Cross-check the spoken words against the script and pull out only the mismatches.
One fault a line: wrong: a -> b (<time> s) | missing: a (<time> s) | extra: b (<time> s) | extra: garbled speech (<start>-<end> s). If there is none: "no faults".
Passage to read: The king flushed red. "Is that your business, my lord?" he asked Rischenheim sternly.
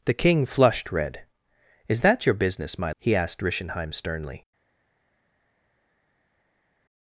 missing: lord (2.9 s)